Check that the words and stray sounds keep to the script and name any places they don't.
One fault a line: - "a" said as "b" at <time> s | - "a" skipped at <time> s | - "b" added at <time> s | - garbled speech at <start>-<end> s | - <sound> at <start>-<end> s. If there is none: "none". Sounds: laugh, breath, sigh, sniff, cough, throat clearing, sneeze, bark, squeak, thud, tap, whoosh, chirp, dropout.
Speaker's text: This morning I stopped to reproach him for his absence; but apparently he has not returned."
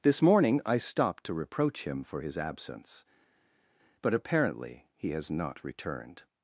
none